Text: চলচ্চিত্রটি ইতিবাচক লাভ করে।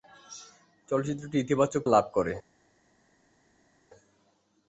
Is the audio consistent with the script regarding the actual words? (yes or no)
yes